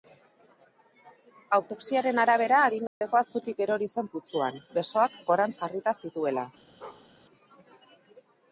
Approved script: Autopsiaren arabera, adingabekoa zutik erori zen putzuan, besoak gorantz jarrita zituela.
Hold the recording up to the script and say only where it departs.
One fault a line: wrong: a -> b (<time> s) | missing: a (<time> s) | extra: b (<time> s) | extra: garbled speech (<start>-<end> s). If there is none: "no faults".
no faults